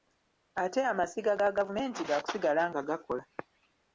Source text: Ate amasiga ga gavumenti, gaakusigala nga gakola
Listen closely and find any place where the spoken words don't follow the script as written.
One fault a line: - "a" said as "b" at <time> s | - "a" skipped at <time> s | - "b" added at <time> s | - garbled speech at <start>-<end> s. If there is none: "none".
none